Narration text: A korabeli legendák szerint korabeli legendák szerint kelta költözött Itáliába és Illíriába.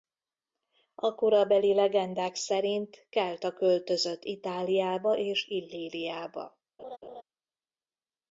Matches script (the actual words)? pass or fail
fail